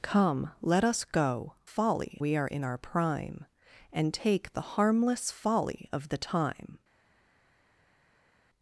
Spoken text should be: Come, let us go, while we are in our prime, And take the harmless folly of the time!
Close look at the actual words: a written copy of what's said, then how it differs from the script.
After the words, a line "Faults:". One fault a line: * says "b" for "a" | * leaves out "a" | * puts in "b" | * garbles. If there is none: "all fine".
Come, let us go, folly we are in our prime, And take the harmless folly of the time!
Faults:
* says "folly" for "while"